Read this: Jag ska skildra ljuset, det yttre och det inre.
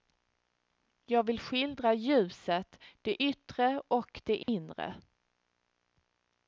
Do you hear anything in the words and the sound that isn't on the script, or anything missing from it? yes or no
yes